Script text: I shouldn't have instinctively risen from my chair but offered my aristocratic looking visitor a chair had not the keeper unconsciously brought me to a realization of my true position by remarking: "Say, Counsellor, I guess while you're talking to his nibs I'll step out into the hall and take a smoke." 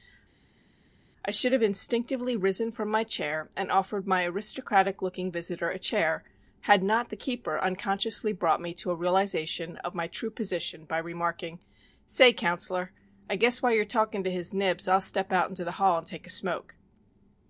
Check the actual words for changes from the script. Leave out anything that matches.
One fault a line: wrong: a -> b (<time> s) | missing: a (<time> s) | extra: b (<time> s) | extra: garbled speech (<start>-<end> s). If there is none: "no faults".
wrong: shouldn't -> should (1.3 s)
wrong: but -> and (3.5 s)